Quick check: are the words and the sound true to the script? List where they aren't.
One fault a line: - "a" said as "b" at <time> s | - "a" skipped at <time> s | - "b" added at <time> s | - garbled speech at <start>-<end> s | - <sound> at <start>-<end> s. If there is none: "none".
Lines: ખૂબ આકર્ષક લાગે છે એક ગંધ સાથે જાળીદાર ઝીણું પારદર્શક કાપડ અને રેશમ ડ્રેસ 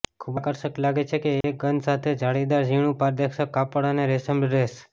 - dropout at 1.4-1.4 s